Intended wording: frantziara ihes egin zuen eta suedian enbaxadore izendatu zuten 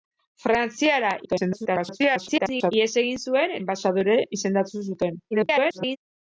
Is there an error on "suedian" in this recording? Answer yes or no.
yes